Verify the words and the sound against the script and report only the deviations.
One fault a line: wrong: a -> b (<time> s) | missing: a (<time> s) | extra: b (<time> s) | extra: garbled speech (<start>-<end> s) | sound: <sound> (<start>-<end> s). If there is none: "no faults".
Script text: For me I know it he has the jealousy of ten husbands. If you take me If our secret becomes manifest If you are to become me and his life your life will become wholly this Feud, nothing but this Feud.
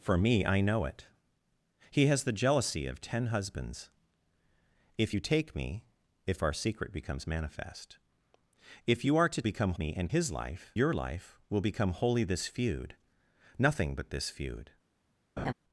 sound: laugh (15.4-15.5 s)